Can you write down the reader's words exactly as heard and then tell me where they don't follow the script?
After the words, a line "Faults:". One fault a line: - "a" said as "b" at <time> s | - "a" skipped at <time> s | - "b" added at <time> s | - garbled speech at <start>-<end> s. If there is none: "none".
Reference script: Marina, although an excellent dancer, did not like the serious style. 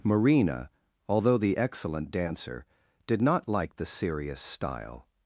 Marina, although the excellent dancer, did not like the serious style.
Faults:
- "an" said as "the" at 1.4 s